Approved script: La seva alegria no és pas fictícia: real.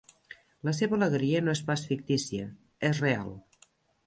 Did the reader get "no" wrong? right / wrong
right